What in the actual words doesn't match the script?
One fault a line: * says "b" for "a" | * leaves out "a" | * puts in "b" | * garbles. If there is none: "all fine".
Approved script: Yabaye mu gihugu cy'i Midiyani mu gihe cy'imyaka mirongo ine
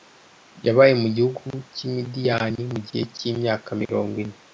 all fine